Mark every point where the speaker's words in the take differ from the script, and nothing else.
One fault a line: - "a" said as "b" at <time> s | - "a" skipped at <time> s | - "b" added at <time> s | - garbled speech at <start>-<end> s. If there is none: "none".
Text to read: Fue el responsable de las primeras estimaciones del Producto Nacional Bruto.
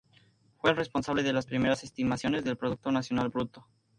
none